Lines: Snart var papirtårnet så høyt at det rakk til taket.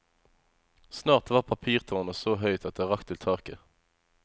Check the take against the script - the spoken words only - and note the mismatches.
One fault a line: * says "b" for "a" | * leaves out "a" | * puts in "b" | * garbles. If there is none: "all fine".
all fine